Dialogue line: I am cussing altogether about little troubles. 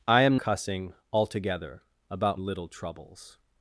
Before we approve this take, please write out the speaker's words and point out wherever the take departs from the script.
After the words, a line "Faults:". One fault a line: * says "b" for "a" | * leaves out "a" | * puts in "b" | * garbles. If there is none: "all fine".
I am cussing altogether about little troubles.
Faults:
all fine